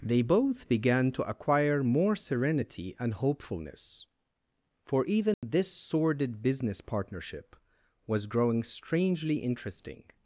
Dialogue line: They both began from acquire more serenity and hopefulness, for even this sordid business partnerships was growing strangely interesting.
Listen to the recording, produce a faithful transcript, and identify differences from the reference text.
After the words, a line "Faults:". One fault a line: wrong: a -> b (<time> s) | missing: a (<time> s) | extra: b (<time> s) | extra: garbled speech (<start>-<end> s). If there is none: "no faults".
They both began to acquire more serenity and hopefulness, for even this sordid business partnership was growing strangely interesting.
Faults:
wrong: from -> to (1.1 s)
wrong: partnerships -> partnership (6.8 s)